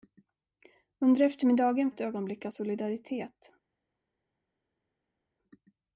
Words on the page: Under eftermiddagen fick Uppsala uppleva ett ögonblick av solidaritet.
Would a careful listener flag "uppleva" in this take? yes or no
yes